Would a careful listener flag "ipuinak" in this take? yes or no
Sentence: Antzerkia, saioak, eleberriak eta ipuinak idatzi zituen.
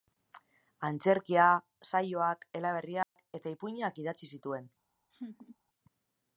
no